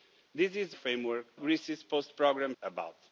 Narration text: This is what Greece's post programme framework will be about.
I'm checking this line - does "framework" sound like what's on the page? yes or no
no